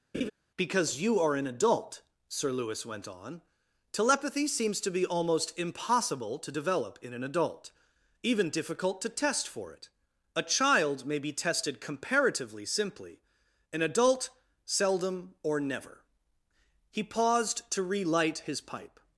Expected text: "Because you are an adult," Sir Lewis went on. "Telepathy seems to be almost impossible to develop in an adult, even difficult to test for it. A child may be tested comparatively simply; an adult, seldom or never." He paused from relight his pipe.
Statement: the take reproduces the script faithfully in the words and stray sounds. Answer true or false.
false